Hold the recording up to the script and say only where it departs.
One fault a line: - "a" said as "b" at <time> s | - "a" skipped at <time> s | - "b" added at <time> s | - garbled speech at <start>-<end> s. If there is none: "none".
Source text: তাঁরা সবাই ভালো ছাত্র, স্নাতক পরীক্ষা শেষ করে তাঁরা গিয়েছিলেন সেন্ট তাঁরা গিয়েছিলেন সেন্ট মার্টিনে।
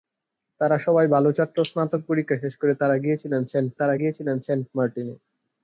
none